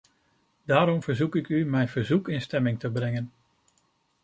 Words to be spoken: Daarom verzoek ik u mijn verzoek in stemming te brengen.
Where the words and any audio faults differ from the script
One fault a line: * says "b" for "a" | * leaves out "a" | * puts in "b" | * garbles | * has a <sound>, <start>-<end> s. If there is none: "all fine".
all fine